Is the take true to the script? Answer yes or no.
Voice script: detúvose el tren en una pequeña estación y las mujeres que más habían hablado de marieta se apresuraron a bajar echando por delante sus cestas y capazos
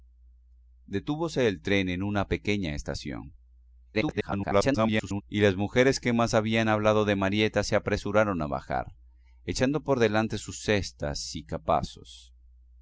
no